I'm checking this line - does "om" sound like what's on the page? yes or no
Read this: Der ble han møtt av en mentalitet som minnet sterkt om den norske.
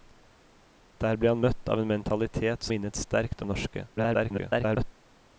no